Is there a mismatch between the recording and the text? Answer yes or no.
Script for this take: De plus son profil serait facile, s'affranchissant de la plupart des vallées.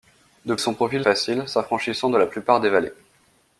yes